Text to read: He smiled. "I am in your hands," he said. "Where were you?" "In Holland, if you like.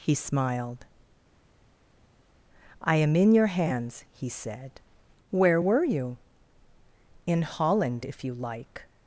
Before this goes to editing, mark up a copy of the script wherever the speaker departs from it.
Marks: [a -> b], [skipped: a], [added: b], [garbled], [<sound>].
He smiled. "I am in your hands," he said. "Where were you?" "In Holland, if you like.